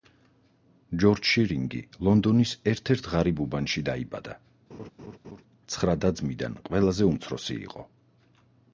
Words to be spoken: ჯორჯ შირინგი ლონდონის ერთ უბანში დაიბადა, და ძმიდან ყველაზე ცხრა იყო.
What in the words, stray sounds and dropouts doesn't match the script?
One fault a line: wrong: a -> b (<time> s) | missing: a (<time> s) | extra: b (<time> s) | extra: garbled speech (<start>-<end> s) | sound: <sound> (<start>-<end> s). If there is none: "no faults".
extra: ერთ ღარიბ (3.0 s)
sound: laugh (4.7-5.4 s)
extra: ცხრა (5.7 s)
wrong: ცხრა -> უმცროსი (7.1 s)